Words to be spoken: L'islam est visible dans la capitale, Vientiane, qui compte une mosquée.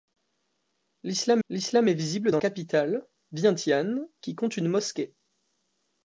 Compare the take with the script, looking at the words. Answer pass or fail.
fail